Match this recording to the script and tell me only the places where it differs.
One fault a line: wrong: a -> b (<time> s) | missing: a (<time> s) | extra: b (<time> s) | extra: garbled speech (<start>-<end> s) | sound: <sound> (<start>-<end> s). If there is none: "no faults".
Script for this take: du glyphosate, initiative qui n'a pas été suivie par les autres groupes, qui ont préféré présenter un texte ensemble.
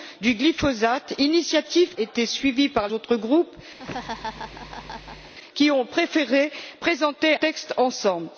missing: qui n'a pas (1.9 s)
missing: les (2.9 s)
sound: laugh (3.8-5.3 s)
missing: un (7.3 s)